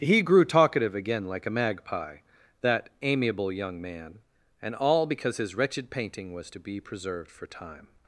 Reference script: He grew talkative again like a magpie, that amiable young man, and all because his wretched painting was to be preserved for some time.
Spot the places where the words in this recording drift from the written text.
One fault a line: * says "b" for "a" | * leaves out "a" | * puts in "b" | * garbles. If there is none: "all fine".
* leaves out "some"